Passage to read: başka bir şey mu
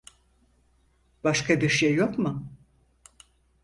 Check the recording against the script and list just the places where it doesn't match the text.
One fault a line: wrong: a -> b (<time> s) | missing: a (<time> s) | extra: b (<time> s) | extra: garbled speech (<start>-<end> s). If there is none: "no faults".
extra: yok (1.9 s)